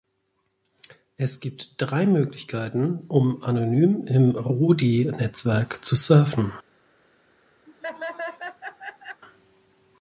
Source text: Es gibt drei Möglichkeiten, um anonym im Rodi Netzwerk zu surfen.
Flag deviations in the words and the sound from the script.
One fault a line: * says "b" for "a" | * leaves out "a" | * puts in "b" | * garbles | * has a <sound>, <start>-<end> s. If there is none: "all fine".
* has a laugh, 7.7-9.2 s